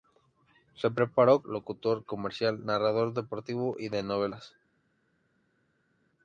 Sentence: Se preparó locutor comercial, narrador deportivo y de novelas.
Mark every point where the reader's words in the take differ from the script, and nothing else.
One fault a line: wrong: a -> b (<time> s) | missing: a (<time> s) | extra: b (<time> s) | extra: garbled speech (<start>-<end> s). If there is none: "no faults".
no faults